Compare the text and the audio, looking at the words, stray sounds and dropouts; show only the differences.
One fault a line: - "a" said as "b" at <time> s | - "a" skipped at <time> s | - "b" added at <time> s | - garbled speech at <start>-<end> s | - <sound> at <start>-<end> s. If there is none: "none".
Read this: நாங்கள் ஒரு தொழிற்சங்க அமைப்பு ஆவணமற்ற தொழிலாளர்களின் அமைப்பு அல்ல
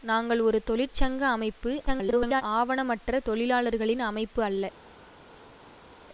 - garbled speech at 1.9-2.4 s